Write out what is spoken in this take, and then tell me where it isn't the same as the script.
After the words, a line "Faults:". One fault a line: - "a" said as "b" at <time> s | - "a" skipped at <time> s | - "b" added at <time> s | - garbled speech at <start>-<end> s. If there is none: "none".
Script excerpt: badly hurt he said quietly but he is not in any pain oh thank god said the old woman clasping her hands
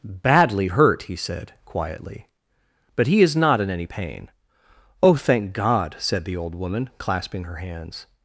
badly hurt he said quietly but he is not in any pain oh thank god said the old woman clasping her hands
Faults:
none